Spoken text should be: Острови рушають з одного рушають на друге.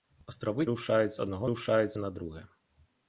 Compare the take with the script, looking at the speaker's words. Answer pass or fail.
pass